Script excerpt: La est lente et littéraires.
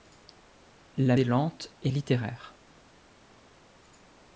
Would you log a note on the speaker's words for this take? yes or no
no